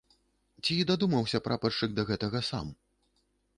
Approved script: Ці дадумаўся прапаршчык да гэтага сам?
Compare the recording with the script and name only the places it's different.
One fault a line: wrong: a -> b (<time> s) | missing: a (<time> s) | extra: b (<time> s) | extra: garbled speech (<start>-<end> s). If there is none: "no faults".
no faults